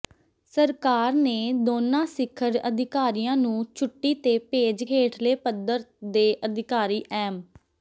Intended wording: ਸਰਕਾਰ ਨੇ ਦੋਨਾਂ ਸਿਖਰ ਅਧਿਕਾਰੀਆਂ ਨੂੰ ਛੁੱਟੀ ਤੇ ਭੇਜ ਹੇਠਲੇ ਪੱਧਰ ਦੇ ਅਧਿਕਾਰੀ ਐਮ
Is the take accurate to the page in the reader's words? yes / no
yes